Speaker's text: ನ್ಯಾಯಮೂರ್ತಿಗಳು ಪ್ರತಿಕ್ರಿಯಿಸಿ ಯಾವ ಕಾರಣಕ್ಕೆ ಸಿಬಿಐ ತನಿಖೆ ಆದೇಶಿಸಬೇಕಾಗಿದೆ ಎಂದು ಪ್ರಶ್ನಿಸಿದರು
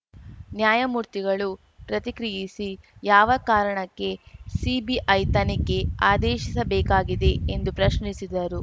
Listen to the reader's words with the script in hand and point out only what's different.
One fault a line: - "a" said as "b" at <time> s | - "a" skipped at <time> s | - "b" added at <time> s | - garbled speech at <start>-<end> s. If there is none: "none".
none